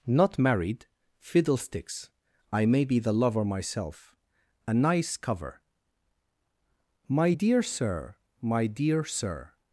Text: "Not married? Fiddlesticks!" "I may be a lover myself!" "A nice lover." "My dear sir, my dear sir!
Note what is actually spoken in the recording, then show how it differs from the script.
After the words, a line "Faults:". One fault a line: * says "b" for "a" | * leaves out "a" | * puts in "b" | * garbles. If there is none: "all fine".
"Not married? Fiddlesticks!" "I may be the lover myself!" "A nice cover." "My dear sir, my dear sir!
Faults:
* says "the" for "a"
* says "cover" for "lover"